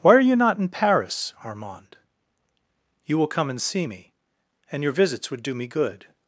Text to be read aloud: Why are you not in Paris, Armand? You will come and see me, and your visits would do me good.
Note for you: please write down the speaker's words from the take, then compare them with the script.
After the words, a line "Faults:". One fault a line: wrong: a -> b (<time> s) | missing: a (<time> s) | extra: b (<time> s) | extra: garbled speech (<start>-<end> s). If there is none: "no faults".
Why are you not in Paris, Armand? You will come and see me, and your visits would do me good.
Faults:
no faults